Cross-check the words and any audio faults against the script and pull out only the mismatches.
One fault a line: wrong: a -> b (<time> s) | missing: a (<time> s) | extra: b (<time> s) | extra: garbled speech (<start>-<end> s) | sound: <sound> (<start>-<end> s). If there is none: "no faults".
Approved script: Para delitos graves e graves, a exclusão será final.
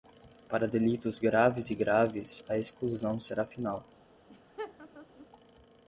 sound: laugh (4.3-5.3 s)